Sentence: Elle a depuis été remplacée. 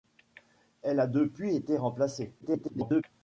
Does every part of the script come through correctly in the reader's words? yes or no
no